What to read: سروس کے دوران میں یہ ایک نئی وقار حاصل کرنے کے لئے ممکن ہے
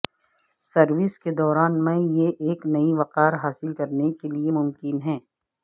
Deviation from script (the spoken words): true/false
false